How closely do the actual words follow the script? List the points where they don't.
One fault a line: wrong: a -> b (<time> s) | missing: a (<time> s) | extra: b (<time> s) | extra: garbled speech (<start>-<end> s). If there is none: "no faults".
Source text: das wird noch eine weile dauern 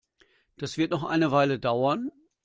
no faults